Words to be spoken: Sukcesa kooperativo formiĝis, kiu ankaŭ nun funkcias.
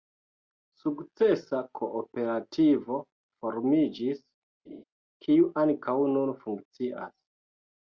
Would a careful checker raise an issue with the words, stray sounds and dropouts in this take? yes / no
yes